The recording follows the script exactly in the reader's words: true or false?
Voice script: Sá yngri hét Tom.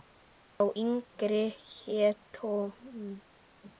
true